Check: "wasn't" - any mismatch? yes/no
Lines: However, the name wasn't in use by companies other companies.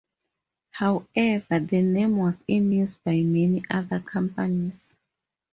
yes